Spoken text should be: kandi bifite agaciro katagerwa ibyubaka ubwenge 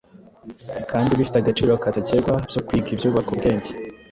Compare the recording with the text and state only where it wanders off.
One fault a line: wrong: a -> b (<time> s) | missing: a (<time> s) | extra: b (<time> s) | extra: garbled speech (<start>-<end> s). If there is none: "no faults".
extra: byo kwiga (2.5 s)